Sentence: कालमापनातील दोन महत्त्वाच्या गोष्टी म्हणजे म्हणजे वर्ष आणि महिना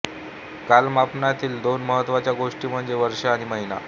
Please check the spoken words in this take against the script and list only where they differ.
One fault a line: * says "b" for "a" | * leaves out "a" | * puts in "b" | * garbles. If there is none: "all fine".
* leaves out "म्हणजे"